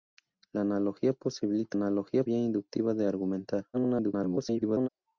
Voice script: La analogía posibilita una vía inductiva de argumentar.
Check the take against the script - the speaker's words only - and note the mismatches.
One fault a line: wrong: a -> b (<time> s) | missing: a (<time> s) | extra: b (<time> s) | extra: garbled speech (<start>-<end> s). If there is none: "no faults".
wrong: una -> analogía (1.7 s)
extra: garbled speech (3.7-4.9 s)